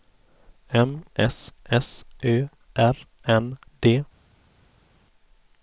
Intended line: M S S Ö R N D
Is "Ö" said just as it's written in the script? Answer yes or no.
yes